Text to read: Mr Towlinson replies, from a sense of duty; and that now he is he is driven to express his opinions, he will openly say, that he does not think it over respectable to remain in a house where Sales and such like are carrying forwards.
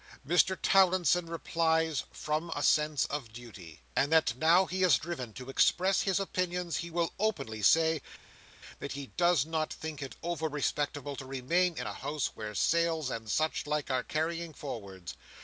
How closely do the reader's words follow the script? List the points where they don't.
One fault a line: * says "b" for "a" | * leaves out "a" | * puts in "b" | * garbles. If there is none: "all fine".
* leaves out "he is"